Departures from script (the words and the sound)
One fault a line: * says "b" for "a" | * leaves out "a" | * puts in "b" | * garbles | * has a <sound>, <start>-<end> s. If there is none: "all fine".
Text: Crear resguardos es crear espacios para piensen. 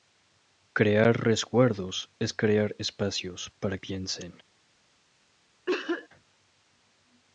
* has a cough, 5.7-6.1 s